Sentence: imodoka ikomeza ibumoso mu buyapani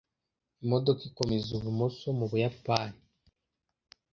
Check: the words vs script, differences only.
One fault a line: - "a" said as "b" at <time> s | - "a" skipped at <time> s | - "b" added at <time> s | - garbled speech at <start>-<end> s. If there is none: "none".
none